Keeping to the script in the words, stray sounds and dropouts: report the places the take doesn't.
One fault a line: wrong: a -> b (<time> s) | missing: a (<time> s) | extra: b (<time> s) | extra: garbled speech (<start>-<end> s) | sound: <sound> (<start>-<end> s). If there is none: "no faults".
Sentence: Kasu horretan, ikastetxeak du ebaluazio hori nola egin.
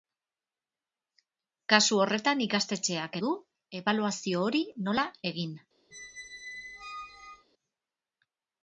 sound: squeak (5.9-7.5 s)